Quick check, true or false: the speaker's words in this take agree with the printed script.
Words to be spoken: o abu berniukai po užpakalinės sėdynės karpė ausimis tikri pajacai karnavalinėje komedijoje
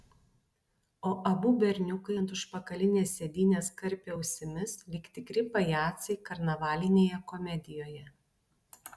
false